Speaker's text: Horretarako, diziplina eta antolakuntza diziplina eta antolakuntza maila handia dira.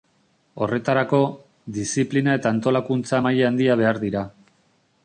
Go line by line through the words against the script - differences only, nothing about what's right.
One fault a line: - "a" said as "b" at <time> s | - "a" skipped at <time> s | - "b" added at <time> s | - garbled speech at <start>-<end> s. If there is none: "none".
- "diziplina eta antolakuntza" skipped at 3.2 s
- "behar" added at 3.8 s